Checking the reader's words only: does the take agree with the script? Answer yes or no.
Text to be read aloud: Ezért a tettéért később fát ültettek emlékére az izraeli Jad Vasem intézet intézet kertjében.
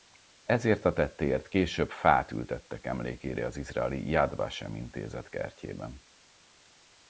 no